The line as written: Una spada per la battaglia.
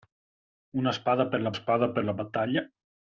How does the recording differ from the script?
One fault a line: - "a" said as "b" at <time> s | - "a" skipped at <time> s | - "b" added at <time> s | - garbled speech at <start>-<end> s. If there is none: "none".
- "spada per la" added at 1.5 s